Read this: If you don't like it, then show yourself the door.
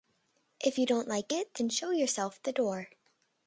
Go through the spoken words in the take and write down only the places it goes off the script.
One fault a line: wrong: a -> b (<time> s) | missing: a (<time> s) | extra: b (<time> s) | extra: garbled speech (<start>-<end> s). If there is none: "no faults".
no faults